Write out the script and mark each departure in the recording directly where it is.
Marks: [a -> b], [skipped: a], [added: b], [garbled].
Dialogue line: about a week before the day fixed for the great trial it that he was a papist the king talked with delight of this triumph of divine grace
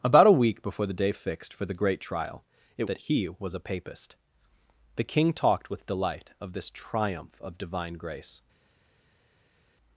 about a week before the day fixed for the great trial it that he was a papist the king talked with delight of this triumph of divine grace